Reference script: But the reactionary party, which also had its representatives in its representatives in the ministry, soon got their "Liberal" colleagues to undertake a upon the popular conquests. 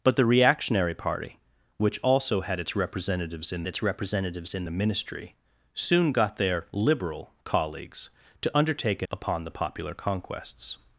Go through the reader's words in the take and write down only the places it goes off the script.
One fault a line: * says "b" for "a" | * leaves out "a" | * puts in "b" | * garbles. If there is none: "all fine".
all fine